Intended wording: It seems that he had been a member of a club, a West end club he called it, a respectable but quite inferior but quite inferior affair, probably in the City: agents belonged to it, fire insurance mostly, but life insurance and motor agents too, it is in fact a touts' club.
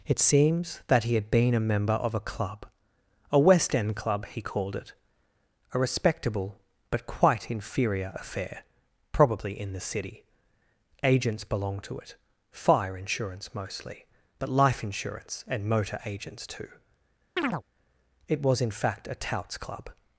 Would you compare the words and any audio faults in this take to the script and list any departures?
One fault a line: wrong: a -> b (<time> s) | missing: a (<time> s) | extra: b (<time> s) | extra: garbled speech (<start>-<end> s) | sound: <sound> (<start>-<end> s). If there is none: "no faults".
missing: but quite inferior (8.1 s)
sound: chirp (17.4-17.6 s)
wrong: is -> was (18.4 s)